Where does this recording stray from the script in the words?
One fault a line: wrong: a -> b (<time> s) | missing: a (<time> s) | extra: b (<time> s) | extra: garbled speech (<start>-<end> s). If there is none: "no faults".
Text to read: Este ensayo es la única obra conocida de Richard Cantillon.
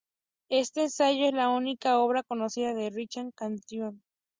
no faults